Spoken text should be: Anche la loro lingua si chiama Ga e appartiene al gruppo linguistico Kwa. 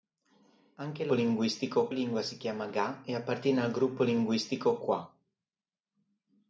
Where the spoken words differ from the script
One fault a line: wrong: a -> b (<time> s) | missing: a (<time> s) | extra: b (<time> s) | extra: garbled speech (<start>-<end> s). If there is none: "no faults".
wrong: loro -> linguistico (1.1 s)